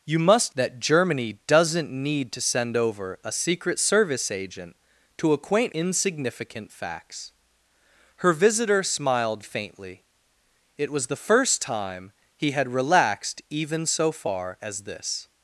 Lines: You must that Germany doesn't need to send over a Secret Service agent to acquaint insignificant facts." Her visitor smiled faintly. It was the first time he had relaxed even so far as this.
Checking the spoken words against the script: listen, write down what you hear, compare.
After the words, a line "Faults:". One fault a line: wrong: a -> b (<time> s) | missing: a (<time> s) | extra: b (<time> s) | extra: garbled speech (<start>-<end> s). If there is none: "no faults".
You must that Germany doesn't need to send over a Secret Service agent to acquaint insignificant facts." Her visitor smiled faintly. It was the first time he had relaxed even so far as this.
Faults:
no faults